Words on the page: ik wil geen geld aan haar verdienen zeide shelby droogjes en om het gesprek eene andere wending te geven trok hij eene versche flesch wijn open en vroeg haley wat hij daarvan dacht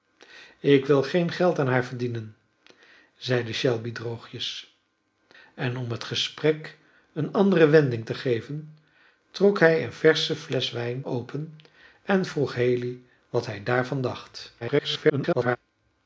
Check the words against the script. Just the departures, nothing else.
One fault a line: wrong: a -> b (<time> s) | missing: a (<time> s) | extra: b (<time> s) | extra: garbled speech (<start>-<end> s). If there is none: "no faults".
extra: garbled speech (14.6-15.6 s)